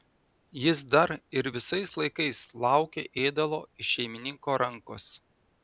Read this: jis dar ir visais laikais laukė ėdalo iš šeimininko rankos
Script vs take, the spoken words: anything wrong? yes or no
no